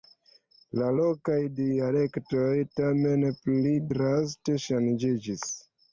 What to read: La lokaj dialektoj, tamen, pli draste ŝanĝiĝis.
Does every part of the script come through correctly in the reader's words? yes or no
yes